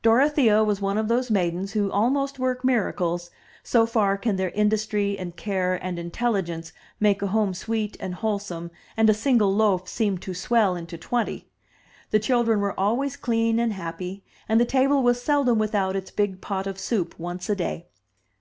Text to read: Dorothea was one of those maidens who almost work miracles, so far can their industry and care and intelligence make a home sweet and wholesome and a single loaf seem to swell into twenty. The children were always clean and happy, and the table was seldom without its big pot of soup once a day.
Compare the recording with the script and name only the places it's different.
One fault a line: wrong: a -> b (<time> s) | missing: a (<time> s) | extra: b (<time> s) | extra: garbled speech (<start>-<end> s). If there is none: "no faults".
no faults